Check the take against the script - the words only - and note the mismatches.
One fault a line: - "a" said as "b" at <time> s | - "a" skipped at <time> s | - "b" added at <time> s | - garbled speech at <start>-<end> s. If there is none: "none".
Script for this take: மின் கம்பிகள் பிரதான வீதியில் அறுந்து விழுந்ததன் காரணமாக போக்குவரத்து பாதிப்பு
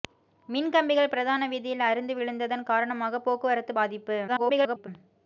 - garbled speech at 4.3-4.9 s